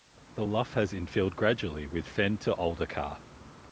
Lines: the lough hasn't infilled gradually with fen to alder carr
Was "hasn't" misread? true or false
true